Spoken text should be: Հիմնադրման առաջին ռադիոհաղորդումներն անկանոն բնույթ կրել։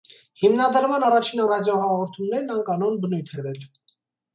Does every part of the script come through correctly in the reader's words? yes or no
yes